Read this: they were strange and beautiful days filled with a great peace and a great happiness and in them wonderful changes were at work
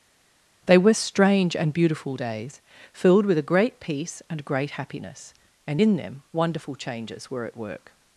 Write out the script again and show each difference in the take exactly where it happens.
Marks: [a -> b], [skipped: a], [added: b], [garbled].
they were strange and beautiful days filled with a great peace and [skipped: a] great happiness and in them wonderful changes were at work